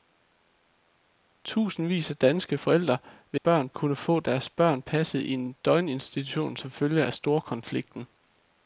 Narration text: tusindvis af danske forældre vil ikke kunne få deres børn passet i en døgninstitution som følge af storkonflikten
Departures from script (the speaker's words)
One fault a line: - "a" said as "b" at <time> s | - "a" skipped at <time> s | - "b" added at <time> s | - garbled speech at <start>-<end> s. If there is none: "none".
- "ikke" said as "børn" at 3.4 s